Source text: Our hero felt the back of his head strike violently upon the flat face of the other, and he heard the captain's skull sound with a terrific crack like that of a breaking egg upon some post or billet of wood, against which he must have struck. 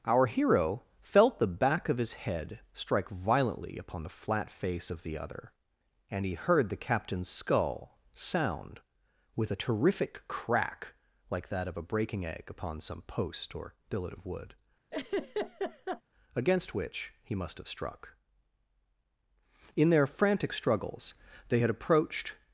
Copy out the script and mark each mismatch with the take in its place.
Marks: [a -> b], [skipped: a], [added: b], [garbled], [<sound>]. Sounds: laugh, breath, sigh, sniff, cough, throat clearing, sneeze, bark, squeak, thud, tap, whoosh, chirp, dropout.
Our hero felt the back of his head strike violently upon the flat face of the other, and he heard the captain's skull sound with a terrific crack like that of a breaking egg upon some post or billet of wood, [laugh] against which he must have struck. [added: In their frantic struggles they had approached]